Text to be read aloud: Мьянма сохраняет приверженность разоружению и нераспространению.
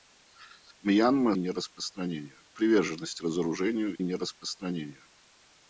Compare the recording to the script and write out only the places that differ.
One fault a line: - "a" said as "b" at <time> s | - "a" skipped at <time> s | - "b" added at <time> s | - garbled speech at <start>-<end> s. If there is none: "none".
- "сохраняет" said as "нераспространению" at 1.4 s
- "и" skipped at 4.0 s